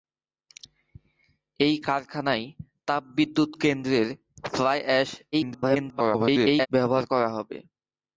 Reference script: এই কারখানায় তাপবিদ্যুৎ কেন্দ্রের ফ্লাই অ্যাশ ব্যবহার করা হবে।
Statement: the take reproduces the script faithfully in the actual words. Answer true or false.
false